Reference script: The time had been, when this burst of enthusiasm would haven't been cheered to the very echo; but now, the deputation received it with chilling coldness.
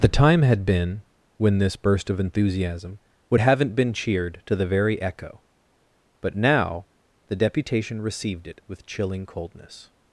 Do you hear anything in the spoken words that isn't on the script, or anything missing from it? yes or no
no